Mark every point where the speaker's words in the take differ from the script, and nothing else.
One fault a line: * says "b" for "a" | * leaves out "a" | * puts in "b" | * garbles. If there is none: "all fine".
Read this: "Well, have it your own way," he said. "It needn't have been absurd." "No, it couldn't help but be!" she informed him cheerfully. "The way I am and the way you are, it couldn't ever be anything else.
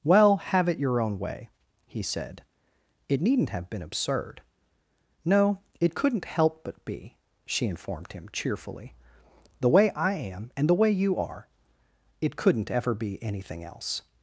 all fine